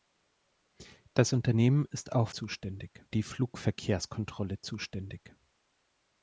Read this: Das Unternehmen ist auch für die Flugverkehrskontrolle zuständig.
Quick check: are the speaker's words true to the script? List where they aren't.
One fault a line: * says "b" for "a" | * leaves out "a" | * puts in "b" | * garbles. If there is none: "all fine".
* says "zuständig" for "für"